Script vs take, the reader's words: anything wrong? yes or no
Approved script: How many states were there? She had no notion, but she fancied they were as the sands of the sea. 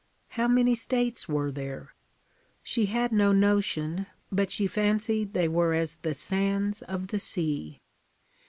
no